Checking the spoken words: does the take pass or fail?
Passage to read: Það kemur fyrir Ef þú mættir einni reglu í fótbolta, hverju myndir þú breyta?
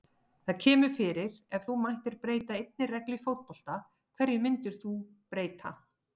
fail